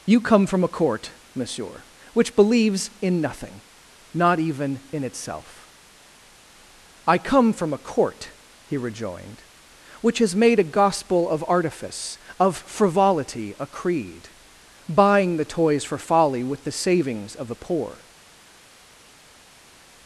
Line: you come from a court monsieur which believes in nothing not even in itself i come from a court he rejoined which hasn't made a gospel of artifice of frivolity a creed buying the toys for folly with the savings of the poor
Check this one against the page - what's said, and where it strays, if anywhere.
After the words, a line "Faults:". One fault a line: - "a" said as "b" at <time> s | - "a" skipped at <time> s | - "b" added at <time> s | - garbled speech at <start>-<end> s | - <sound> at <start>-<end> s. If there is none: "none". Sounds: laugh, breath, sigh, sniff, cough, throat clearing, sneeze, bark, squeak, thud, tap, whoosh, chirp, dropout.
you come from a court monsieur which believes in nothing not even in itself i come from a court he rejoined which has made a gospel of artifice of frivolity a creed buying the toys for folly with the savings of the poor
Faults:
- "hasn't" said as "has" at 10.2 s